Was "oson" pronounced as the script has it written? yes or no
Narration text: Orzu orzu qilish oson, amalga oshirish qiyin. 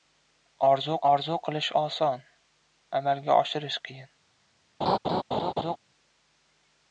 yes